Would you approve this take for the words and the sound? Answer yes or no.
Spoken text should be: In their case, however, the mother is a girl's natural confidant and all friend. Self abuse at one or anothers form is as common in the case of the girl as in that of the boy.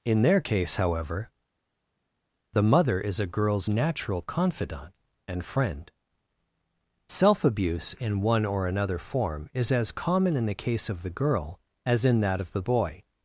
no